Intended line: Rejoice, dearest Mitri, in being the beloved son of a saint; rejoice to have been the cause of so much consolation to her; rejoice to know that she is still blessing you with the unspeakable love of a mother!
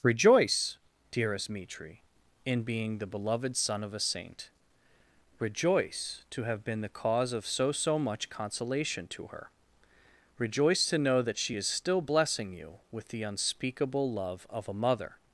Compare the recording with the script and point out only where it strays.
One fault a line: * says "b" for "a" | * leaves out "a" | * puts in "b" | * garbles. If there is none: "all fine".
* puts in "so"